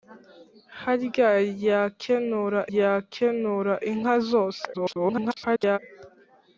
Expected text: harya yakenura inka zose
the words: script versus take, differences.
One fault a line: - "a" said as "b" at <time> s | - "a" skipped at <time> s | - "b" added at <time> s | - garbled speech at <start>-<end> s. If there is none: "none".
- "yakenura" added at 2.8 s
- garbled speech at 4.7-5.8 s